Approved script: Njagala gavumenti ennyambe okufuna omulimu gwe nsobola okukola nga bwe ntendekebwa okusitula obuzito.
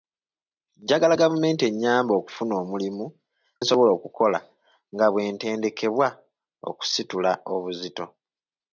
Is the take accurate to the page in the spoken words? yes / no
no